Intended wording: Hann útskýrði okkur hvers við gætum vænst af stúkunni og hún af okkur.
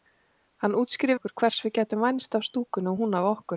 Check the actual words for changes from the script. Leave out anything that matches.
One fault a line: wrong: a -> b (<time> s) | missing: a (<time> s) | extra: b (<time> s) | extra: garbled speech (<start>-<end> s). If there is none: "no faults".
no faults